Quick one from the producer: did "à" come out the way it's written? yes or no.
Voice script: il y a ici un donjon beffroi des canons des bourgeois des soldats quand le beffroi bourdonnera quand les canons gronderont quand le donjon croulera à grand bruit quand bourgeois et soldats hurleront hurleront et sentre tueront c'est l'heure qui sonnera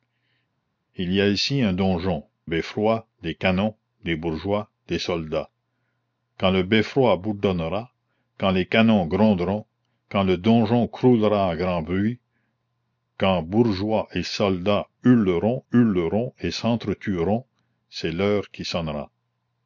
yes